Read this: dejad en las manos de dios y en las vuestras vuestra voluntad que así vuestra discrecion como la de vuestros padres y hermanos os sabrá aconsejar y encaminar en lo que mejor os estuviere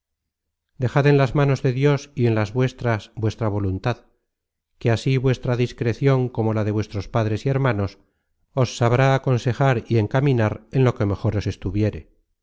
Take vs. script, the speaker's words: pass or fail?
pass